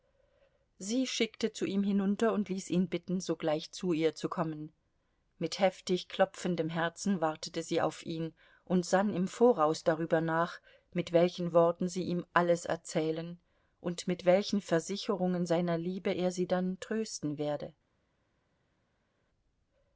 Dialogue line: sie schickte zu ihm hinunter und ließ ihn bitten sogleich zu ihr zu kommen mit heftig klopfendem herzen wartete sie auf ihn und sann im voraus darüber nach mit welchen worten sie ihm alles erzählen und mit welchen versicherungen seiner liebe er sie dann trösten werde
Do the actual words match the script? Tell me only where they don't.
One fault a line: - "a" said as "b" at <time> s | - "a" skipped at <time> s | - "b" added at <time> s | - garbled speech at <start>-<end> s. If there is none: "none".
none